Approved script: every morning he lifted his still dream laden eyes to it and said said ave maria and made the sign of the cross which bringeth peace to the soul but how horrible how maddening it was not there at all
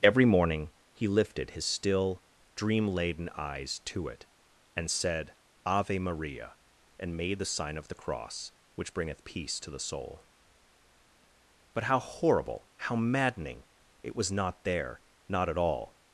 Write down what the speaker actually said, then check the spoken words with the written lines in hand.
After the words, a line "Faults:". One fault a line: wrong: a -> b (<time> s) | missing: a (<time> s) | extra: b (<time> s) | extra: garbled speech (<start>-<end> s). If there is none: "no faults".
every morning he lifted his still dream laden eyes to it and said ave maria and made the sign of the cross which bringeth peace to the soul but how horrible how maddening it was not there not at all
Faults:
missing: said (5.3 s)
extra: not (15.3 s)